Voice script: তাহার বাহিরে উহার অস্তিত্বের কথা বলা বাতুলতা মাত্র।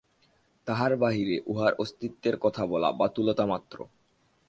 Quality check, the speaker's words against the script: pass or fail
pass